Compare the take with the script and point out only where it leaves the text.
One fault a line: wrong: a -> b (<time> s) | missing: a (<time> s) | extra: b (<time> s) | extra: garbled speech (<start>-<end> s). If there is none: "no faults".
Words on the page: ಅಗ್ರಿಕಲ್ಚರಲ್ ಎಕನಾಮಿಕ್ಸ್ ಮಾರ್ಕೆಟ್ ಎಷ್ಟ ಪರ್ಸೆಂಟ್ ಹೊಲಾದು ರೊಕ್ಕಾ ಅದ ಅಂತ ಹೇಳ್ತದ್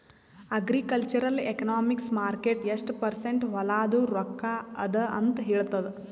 no faults